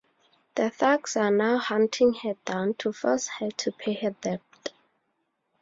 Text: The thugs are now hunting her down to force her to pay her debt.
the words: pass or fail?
pass